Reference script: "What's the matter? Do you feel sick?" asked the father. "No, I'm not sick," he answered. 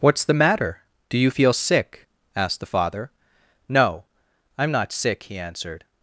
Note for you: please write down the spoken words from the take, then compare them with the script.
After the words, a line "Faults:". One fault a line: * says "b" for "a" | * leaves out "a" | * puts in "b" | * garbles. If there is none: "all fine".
"What's the matter? Do you feel sick?" asked the father. "No, I'm not sick," he answered.
Faults:
all fine